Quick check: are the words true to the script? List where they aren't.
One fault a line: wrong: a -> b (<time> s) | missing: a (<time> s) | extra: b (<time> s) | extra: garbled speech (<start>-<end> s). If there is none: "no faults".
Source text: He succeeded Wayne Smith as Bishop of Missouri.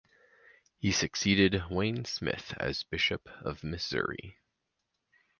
no faults